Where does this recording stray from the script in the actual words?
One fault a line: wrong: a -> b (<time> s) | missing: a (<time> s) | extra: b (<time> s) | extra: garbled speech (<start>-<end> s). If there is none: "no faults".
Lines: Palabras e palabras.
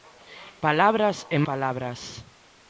no faults